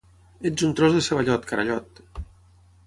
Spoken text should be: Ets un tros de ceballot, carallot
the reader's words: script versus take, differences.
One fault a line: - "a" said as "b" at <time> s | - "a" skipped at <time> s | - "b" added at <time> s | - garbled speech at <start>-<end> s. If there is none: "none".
none